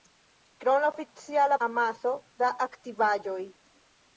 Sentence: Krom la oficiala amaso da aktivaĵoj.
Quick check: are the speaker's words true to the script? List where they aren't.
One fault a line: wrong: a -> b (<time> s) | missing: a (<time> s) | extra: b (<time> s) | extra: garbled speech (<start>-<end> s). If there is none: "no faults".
no faults